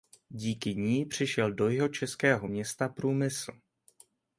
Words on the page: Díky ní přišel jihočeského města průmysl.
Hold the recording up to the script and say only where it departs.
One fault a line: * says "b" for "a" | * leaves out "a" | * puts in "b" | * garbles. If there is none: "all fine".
* puts in "do"